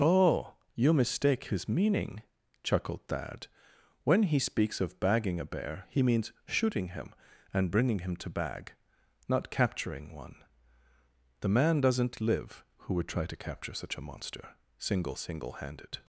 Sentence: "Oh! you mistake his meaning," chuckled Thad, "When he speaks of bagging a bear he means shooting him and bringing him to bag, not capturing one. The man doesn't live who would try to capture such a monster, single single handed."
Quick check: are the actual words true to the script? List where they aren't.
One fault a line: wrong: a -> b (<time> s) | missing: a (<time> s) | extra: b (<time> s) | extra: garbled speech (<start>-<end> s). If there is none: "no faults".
no faults